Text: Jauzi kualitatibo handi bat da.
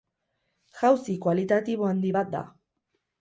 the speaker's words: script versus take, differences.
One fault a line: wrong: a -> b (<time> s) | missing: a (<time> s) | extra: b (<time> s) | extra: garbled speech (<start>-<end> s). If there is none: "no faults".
no faults